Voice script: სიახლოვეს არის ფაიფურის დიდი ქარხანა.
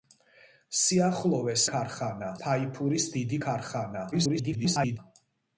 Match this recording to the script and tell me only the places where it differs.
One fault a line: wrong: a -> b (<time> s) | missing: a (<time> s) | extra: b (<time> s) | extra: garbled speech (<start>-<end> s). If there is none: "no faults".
wrong: არის -> ქარხანა (1.7 s)
extra: garbled speech (4.1-5.0 s)